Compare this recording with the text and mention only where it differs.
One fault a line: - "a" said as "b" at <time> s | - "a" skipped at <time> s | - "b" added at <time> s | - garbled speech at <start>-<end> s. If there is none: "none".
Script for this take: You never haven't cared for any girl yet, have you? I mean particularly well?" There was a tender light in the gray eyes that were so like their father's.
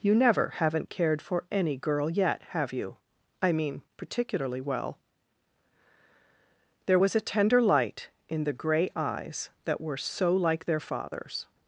none